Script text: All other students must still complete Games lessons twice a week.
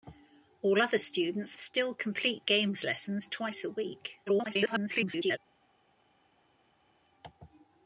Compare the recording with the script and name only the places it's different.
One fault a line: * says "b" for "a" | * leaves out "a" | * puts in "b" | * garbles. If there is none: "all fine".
* leaves out "must"
* garbles